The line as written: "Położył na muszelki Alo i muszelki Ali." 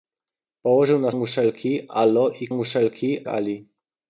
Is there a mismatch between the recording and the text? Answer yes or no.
no